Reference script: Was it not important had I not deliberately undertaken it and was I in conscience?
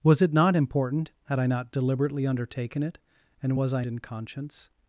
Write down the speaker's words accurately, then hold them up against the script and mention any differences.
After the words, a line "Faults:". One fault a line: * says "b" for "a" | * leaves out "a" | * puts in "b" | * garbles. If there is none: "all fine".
Was it not important had I not deliberately undertaken it and was I in conscience?
Faults:
all fine